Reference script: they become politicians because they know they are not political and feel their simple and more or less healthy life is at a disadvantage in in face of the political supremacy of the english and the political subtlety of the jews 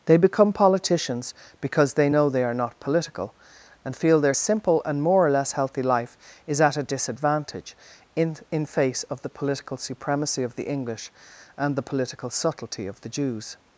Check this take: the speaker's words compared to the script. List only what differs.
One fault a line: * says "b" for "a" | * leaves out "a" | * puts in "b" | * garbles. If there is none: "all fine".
all fine